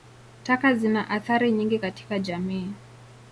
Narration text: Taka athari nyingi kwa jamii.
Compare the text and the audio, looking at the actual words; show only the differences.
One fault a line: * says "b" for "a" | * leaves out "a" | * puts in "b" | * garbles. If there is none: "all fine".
* puts in "zina"
* says "katika" for "kwa"